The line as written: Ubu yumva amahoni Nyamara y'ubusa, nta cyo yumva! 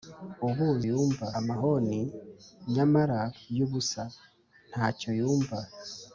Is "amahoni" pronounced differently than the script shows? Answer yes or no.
no